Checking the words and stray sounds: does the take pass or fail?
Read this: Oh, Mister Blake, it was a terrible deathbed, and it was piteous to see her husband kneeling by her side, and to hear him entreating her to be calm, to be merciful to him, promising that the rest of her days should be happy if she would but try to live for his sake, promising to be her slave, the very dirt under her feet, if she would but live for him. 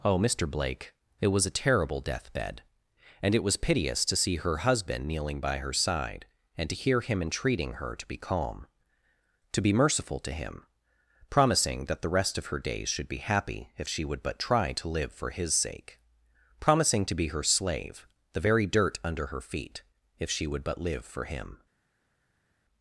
pass